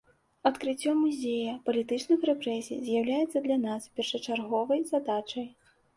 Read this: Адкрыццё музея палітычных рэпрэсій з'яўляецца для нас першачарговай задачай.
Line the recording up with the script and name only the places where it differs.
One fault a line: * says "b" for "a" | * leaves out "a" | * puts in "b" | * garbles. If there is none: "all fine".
all fine